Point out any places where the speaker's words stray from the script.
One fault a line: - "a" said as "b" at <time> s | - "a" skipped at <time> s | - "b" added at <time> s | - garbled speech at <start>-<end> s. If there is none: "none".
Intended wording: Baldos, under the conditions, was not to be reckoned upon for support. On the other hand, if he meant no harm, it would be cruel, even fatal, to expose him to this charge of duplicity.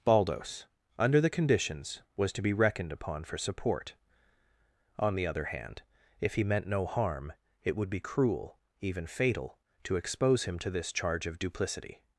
- "not" skipped at 2.3 s